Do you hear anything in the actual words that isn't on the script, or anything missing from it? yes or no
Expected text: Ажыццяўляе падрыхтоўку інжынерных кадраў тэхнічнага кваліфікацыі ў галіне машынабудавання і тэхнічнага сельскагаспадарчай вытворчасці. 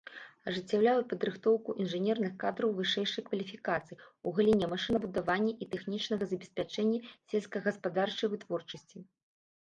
yes